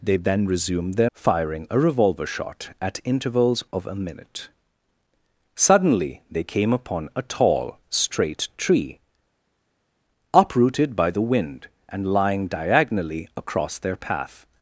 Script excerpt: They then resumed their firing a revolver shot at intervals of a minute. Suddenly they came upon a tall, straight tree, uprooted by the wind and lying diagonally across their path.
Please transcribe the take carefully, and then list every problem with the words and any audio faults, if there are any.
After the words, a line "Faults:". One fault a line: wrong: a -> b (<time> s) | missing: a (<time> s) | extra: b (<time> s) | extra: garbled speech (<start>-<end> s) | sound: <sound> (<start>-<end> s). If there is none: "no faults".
They then resumed their firing a revolver shot at intervals of a minute. Suddenly they came upon a tall, straight tree, uprooted by the wind and lying diagonally across their path.
Faults:
no faults